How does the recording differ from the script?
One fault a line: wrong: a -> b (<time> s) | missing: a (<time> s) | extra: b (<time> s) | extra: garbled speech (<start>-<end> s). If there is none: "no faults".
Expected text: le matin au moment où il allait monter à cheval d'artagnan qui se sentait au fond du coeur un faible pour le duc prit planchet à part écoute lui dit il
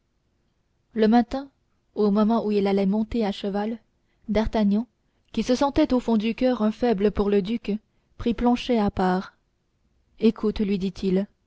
no faults